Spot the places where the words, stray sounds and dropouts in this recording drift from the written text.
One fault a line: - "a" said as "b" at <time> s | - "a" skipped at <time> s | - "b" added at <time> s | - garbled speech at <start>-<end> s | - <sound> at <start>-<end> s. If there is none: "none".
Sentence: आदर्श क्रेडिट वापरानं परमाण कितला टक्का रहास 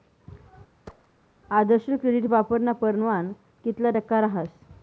- thud at 0.9-1.1 s